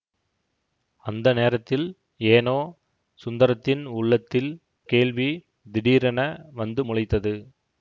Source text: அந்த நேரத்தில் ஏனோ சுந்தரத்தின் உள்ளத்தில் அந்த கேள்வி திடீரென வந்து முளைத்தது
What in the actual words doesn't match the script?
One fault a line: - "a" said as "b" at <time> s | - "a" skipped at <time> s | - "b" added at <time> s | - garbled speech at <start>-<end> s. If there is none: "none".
- "அந்த" skipped at 4.5 s